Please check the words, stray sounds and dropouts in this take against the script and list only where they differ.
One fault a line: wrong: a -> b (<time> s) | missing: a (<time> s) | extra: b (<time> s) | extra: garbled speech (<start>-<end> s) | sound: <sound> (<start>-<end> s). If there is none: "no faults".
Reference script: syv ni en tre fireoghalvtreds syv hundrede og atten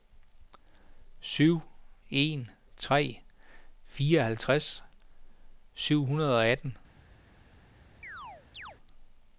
missing: ni (1.6 s)
sound: chirp (8.0-8.8 s)